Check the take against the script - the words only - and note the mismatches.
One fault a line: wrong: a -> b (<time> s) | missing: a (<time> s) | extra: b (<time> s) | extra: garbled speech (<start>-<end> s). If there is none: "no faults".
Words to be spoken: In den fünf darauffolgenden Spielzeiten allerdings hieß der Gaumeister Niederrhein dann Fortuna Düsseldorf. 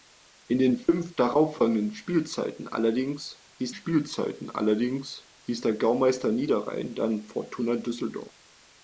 extra: Spielzeiten allerdings hieß (3.7 s)